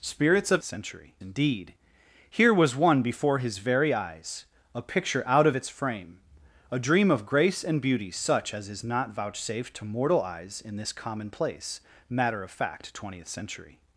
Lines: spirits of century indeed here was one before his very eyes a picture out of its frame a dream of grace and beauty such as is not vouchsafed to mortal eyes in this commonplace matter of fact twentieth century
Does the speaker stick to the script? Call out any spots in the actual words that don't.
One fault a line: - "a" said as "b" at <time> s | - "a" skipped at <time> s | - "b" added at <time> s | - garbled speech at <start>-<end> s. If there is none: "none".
none